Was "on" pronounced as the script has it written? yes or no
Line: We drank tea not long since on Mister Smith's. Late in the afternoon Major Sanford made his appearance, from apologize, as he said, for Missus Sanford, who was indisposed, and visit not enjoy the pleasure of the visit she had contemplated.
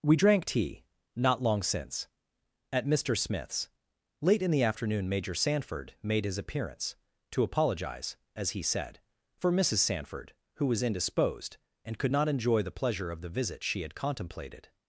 no